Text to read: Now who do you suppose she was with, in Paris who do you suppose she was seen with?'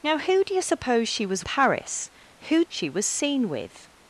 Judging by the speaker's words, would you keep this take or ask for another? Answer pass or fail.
fail